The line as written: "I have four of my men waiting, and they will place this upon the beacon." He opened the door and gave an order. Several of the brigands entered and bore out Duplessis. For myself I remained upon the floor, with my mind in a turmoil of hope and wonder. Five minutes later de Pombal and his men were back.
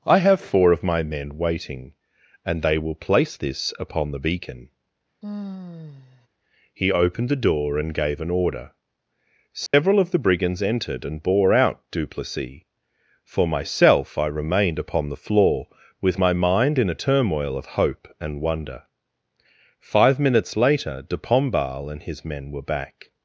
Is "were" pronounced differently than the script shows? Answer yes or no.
no